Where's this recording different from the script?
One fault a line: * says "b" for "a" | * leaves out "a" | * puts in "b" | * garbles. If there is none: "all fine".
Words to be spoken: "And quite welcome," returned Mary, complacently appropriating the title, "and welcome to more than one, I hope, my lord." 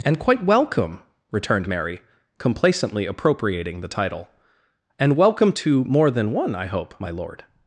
all fine